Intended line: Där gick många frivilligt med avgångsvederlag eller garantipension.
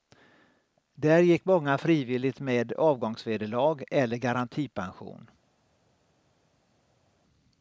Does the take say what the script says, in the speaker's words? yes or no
yes